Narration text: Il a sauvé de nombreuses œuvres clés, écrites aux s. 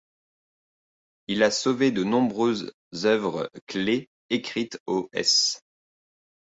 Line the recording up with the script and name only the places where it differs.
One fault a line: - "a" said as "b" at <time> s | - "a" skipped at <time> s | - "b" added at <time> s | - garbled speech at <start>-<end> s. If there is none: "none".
none